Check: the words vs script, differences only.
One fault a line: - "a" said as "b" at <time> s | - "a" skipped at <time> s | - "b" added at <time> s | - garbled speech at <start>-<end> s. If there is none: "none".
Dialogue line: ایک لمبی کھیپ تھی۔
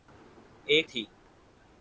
- "لمبی کھیپ" skipped at 0.8 s